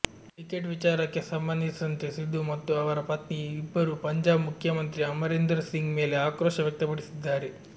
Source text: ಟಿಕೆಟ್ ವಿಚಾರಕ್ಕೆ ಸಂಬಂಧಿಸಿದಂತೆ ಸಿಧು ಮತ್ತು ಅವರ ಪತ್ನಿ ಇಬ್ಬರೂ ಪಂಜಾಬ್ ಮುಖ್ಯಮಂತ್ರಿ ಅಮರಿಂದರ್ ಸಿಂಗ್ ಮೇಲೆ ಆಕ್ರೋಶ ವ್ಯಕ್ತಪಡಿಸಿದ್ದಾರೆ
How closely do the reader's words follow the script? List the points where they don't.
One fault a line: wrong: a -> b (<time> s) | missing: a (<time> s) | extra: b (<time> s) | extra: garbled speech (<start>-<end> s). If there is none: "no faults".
no faults